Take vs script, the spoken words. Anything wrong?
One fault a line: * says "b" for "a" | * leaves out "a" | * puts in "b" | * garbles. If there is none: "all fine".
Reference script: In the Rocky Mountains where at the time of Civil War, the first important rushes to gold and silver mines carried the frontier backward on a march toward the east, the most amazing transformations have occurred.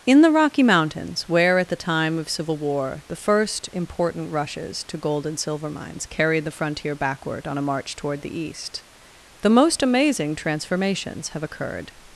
all fine